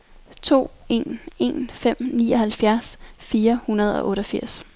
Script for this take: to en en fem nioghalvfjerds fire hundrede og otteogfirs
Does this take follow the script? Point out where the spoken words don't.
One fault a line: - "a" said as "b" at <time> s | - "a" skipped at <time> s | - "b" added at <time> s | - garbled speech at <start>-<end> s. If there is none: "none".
none